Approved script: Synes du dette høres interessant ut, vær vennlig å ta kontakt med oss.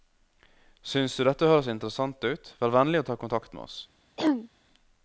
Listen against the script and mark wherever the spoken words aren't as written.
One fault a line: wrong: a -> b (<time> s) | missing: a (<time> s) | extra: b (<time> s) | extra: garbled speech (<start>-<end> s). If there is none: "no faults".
no faults